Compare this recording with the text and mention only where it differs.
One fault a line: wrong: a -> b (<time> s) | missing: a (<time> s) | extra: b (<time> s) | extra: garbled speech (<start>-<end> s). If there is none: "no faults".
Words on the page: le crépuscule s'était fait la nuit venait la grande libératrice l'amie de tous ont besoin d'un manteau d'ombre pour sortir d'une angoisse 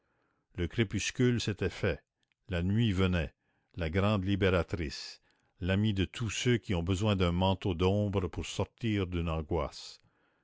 extra: ceux qui (6.3 s)